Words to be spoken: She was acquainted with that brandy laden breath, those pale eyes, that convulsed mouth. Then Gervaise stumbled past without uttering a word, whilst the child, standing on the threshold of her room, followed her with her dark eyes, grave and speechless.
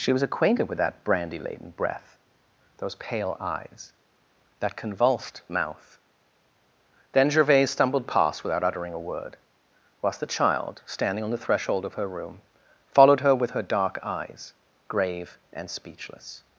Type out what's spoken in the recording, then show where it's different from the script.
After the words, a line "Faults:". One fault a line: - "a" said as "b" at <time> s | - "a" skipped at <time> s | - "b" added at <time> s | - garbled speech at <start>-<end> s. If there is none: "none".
She was acquainted with that brandy laden breath, those pale eyes, that convulsed mouth. Then Gervaise stumbled past without uttering a word, whilst the child, standing on the threshold of her room, followed her with her dark eyes, grave and speechless.
Faults:
none